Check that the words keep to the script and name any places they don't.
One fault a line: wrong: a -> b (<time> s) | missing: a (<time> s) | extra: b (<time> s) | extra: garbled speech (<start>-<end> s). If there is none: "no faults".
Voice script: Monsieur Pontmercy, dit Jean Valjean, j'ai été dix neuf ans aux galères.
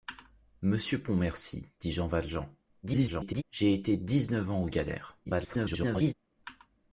extra: garbled speech (2.8-3.4 s)
extra: garbled speech (5.2-6.1 s)